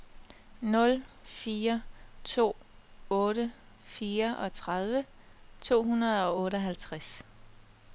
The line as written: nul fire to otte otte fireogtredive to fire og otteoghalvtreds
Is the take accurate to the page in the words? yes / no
no